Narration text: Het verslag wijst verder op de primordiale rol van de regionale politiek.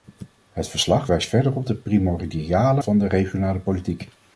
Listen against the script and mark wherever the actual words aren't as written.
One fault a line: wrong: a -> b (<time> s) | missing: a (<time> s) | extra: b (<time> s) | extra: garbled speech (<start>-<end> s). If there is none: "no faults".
missing: rol (2.8 s)